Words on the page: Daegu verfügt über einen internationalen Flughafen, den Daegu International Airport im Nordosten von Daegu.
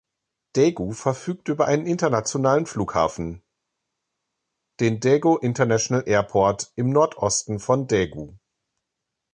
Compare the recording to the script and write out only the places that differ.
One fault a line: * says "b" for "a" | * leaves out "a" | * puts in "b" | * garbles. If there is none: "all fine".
all fine